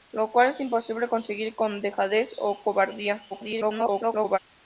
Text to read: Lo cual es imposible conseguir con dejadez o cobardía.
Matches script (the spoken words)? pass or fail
fail